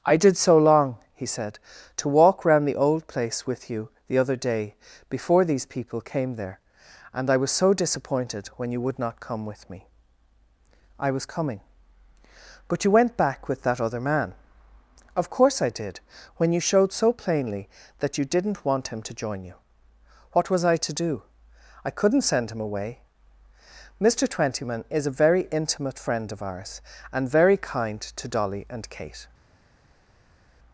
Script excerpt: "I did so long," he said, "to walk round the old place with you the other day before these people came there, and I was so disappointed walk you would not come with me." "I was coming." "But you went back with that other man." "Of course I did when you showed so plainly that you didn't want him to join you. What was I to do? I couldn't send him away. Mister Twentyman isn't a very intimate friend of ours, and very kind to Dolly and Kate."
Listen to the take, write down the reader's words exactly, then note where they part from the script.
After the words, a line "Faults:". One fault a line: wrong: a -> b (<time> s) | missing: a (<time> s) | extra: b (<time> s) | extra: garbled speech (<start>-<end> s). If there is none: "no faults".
"I did so long," he said, "to walk round the old place with you the other day before these people came there, and I was so disappointed when you would not come with me." "I was coming." "But you went back with that other man." "Of course I did when you showed so plainly that you didn't want him to join you. What was I to do? I couldn't send him away. Mister Twentyman is a very intimate friend of ours, and very kind to Dolly and Kate."
Faults:
wrong: walk -> when (8.6 s)
wrong: isn't -> is (24.9 s)